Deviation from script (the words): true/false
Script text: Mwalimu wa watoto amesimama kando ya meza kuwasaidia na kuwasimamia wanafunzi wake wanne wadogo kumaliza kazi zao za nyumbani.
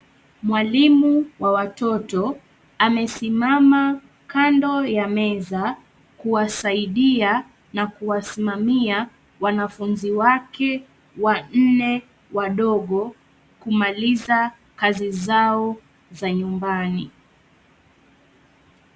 false